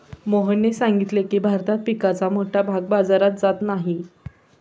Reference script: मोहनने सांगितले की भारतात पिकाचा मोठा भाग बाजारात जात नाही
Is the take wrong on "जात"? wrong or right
right